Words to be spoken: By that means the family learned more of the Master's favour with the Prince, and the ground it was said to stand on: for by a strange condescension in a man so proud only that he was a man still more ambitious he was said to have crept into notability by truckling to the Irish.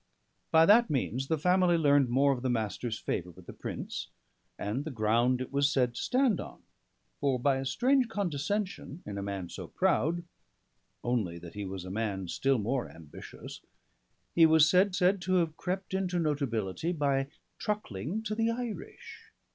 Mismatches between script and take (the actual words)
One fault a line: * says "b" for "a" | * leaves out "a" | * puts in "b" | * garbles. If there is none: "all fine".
* puts in "said"